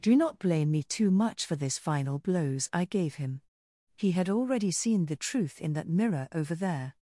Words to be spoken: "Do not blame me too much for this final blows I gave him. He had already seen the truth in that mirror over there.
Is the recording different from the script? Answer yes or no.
no